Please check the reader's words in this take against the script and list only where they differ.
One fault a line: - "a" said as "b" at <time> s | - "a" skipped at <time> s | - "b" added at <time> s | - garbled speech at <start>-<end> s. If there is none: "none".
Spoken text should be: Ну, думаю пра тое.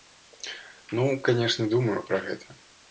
- "канешне" added at 1.3 s
- "тое" said as "гэта" at 2.3 s